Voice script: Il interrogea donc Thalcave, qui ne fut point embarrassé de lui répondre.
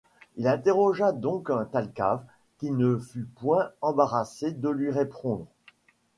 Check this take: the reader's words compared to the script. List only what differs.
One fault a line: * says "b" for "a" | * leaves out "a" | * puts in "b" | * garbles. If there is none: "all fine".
all fine